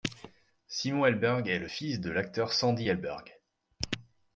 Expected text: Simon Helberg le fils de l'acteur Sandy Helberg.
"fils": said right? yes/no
yes